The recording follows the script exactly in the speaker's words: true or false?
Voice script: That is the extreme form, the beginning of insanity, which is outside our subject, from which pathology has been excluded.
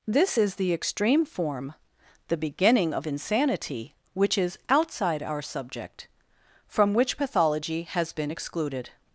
false